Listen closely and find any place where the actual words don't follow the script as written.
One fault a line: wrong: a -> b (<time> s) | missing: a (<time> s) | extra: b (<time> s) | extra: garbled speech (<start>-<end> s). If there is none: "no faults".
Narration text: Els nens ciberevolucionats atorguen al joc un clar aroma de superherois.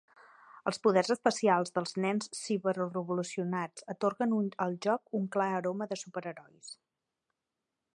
extra: poders especials dels (0.8 s)